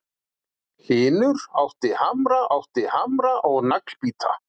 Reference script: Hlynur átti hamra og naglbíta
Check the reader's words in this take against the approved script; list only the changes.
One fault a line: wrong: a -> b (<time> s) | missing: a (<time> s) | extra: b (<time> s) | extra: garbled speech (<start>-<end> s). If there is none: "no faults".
extra: átti hamra (2.6 s)